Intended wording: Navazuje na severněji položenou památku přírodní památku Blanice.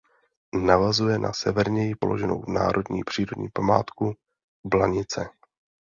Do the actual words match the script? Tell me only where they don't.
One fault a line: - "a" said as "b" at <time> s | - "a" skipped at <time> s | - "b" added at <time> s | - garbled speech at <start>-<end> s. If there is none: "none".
- "památku" said as "národní" at 2.5 s